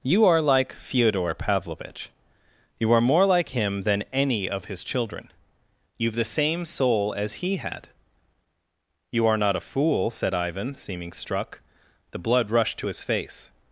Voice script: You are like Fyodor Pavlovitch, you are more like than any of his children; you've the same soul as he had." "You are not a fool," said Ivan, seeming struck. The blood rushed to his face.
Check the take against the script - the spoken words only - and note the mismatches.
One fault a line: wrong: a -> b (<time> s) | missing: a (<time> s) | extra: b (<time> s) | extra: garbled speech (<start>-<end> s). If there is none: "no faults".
extra: him (3.5 s)